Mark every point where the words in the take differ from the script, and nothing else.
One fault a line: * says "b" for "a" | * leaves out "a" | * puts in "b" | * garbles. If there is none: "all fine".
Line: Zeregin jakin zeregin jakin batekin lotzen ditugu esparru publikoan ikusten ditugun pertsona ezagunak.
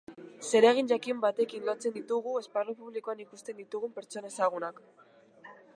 * leaves out "zeregin jakin"